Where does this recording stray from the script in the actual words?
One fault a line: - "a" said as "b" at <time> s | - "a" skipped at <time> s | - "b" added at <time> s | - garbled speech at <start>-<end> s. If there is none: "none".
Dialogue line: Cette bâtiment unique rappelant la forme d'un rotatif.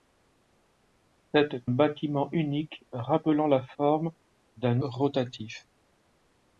none